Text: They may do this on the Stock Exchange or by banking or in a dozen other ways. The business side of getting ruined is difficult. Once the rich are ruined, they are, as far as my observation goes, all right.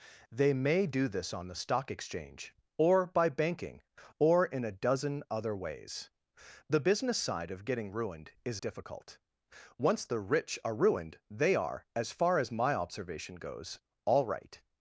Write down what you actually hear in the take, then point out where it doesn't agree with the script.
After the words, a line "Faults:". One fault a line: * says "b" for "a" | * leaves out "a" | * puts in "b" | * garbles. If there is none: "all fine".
They may do this on the Stock Exchange or by banking or in a dozen other ways. The business side of getting ruined is difficult. Once the rich are ruined, they are, as far as my observation goes, all right.
Faults:
all fine